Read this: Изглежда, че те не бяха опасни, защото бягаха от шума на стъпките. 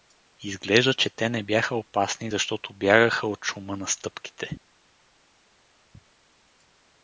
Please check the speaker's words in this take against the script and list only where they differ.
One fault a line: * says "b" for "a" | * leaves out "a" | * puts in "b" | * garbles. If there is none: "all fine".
all fine